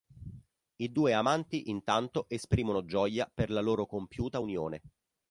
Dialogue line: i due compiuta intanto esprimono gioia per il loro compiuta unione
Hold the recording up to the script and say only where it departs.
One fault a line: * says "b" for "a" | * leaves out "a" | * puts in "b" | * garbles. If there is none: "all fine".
* says "amanti" for "compiuta"
* says "la" for "il"